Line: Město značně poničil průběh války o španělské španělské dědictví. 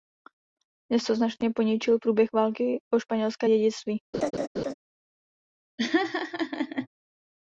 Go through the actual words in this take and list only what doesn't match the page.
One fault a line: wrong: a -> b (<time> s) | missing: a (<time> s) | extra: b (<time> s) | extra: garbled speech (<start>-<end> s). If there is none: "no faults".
missing: španělské (3.5 s)